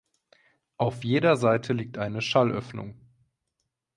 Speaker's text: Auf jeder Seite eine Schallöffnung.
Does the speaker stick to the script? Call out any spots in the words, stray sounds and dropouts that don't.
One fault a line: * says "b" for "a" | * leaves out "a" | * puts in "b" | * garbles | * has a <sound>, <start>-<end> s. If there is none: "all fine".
* puts in "liegt"